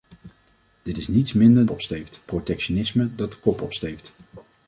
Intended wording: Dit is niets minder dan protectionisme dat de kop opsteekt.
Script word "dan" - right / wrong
wrong